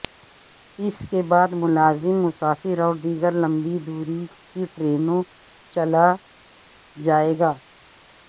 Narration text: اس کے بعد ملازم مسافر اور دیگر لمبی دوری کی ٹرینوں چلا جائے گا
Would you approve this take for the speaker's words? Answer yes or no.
yes